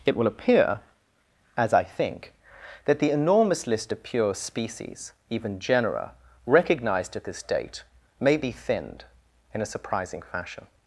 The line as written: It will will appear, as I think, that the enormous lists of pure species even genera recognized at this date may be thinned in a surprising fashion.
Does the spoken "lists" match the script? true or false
false